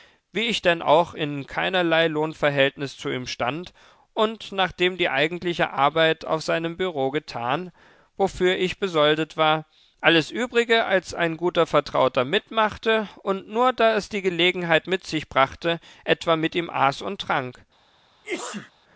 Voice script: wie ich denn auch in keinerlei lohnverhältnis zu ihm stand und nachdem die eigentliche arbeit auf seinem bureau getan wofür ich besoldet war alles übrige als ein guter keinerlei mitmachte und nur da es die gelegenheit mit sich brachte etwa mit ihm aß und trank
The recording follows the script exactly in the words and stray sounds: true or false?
false